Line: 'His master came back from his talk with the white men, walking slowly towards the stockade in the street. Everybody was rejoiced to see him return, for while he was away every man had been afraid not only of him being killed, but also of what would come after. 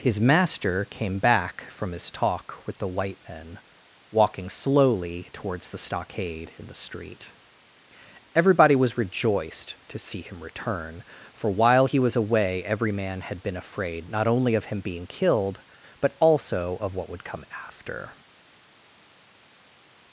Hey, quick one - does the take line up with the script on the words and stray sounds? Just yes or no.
yes